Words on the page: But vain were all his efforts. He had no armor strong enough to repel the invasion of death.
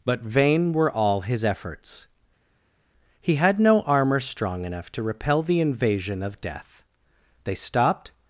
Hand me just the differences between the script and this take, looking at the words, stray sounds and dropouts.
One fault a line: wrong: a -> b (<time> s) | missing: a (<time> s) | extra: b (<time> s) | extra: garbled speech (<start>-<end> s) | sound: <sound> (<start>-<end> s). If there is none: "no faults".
extra: They stopped (7.4 s)